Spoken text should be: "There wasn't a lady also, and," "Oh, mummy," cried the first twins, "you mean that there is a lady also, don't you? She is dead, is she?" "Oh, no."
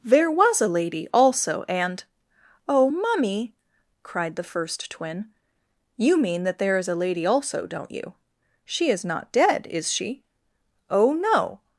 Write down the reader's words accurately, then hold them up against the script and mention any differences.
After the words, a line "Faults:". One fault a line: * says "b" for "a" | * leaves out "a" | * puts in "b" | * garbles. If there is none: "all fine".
"There was a lady also, and," "Oh, mummy," cried the first twin, "you mean that there is a lady also, don't you? She is not dead, is she?" "Oh, no."
Faults:
* says "was" for "wasn't"
* says "twin" for "twins"
* puts in "not"